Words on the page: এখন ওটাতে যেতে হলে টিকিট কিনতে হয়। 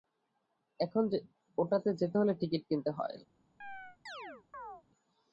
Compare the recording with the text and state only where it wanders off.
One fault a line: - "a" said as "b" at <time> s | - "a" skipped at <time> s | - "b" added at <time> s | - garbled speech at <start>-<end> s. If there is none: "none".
none